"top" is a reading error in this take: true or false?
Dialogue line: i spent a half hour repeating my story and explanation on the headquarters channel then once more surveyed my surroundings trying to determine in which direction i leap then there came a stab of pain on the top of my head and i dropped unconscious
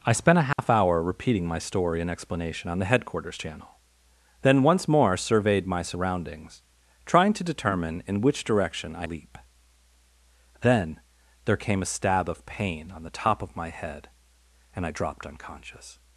false